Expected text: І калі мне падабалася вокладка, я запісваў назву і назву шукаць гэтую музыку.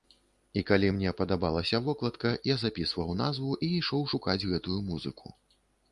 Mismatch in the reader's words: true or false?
true